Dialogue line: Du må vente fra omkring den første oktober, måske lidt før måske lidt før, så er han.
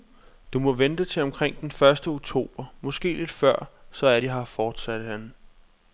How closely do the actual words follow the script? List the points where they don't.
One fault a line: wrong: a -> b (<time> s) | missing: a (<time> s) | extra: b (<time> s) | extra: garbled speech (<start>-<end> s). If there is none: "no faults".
wrong: fra -> til (1.1 s)
wrong: måske lidt før så er -> så er de her fortsatte (3.9 s)